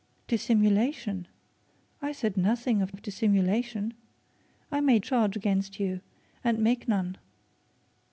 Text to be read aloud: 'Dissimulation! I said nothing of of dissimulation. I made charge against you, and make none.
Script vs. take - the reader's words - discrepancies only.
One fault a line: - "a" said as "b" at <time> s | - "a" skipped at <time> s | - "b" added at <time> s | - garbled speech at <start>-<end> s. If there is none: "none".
none